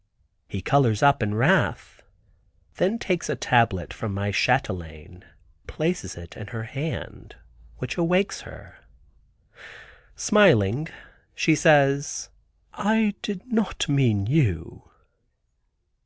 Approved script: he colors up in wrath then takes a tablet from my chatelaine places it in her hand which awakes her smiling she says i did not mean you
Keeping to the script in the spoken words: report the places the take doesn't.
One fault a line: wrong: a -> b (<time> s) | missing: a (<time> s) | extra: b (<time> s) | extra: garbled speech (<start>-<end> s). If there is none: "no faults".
no faults